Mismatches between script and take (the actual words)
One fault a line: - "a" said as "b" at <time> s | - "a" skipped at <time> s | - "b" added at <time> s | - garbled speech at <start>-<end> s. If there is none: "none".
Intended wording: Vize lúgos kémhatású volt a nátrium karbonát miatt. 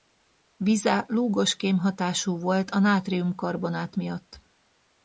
none